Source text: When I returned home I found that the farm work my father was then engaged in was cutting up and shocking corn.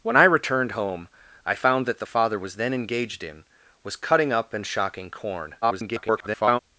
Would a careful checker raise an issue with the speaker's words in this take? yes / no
yes